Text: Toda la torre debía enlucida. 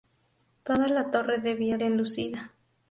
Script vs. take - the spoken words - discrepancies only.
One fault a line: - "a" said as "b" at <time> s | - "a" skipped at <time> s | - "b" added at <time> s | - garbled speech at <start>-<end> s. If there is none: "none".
none